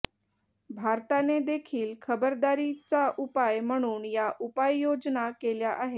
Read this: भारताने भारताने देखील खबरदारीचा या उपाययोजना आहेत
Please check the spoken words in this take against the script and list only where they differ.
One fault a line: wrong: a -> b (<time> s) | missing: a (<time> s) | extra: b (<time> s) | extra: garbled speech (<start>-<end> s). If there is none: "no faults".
missing: भारताने (1.4 s)
extra: उपाय म्हणून (3.2 s)
extra: केल्या (5.3 s)